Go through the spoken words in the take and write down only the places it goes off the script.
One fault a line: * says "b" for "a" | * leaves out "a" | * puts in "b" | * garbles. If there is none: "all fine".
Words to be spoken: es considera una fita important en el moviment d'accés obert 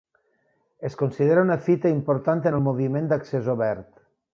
all fine